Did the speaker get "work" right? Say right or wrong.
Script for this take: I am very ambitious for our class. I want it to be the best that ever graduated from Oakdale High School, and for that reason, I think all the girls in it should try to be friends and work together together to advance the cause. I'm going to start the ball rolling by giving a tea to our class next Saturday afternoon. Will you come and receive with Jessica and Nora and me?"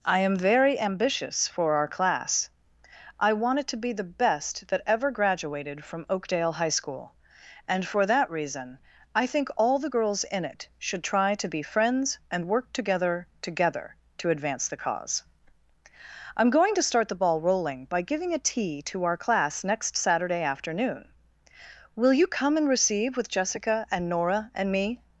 right